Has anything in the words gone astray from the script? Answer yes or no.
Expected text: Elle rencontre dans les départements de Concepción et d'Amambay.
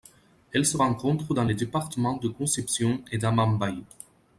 yes